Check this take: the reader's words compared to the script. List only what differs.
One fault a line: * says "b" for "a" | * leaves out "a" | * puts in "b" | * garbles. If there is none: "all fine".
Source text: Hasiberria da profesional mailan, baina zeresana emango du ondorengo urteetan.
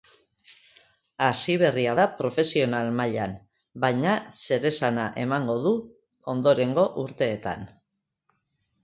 all fine